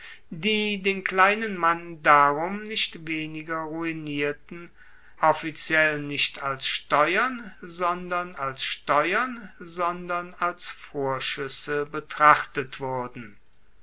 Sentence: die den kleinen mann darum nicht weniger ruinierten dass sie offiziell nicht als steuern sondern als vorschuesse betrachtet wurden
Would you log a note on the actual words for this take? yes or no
yes